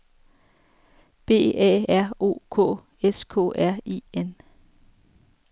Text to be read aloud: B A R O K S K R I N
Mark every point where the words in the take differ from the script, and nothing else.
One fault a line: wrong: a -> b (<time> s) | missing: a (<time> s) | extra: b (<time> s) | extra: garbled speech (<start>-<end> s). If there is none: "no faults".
no faults